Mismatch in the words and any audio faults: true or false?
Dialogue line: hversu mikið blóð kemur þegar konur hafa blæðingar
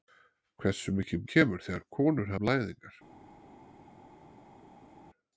true